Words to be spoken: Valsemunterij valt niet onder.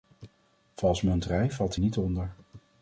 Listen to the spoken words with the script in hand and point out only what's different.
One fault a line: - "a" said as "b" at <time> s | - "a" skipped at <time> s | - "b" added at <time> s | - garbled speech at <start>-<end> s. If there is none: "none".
none